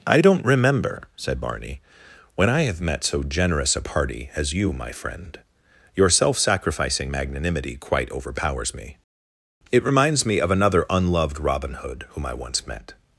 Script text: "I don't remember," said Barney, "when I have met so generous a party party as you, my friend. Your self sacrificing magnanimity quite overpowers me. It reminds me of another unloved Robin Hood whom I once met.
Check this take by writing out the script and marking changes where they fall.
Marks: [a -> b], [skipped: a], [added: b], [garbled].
"I don't remember," said Barney, "when I have met so generous a party [skipped: party] as you, my friend. Your self sacrificing magnanimity quite overpowers me. It reminds me of another unloved Robin Hood whom I once met.